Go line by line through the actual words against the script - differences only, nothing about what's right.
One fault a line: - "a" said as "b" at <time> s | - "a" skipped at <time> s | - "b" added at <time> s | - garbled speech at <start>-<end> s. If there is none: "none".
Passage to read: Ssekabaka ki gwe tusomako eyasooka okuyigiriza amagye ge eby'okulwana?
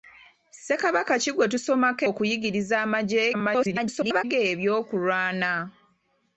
- "eyasooka" skipped at 2.0 s
- garbled speech at 3.3-4.2 s